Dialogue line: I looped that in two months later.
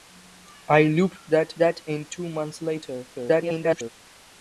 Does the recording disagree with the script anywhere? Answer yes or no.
yes